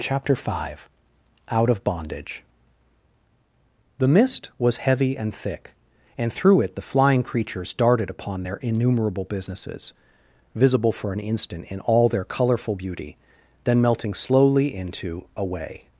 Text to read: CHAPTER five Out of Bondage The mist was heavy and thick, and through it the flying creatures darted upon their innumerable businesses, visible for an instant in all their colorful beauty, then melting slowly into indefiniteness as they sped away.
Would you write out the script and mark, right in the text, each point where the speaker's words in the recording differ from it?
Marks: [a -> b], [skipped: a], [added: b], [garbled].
CHAPTER five Out of Bondage The mist was heavy and thick, and through it the flying creatures darted upon their innumerable businesses, visible for an instant in all their colorful beauty, then melting slowly into [skipped: indefiniteness as they sped] away.